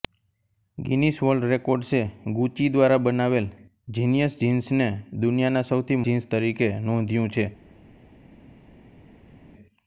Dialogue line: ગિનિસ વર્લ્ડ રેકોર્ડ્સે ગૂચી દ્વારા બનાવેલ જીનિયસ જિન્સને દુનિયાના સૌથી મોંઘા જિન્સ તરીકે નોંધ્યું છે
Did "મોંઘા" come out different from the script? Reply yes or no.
yes